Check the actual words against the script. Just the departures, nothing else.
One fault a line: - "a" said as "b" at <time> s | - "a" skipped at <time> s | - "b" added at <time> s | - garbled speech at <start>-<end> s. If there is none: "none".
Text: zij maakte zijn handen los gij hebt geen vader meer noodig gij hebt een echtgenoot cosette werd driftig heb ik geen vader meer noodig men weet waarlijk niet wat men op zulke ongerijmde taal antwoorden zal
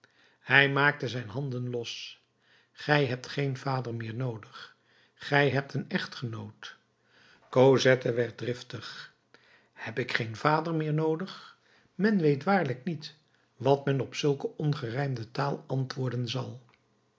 - "zij" said as "hij" at 0.4 s